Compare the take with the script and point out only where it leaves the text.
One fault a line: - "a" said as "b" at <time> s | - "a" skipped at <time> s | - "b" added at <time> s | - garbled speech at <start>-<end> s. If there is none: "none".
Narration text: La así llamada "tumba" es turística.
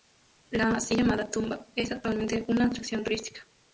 - "actualmente una atracción" added at 1.9 s